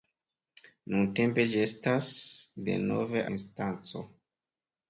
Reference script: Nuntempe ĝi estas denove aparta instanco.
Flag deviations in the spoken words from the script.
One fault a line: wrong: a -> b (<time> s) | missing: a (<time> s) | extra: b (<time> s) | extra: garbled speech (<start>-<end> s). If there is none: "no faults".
missing: aparta (3.3 s)